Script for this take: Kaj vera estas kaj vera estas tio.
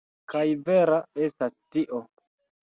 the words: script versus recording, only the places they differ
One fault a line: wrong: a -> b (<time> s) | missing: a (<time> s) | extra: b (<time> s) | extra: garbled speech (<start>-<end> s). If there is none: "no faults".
missing: kaj vera estas (1.6 s)